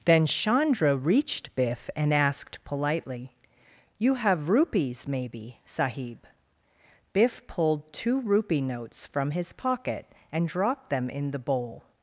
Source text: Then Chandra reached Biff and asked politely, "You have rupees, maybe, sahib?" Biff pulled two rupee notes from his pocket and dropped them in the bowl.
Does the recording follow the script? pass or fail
pass